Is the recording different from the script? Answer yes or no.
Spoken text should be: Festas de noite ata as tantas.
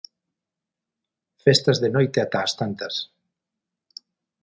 no